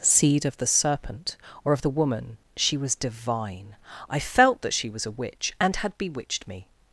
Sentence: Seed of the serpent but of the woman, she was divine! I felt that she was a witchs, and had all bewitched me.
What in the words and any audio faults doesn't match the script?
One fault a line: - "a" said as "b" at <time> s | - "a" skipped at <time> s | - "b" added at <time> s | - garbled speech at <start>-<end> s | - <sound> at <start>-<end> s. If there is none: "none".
- "but" said as "or" at 1.6 s
- "witchs" said as "witch" at 5.1 s
- "all" skipped at 6.0 s